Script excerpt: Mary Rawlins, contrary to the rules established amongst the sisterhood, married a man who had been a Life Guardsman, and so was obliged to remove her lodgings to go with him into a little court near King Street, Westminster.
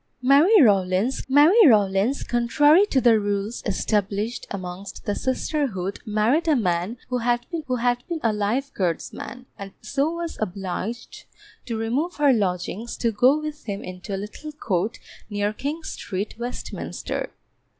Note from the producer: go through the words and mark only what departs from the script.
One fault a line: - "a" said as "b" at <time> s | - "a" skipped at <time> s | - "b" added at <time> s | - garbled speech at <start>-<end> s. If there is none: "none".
- "mary Rawlins" added at 1.3 s
- "who had been" added at 7.7 s